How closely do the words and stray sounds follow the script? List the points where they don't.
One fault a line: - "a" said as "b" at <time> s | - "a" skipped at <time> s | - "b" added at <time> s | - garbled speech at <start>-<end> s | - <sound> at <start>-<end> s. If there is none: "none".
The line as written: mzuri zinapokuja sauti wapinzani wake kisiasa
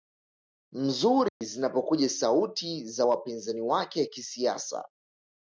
- dropout at 1.3-1.4 s
- "za" added at 2.9 s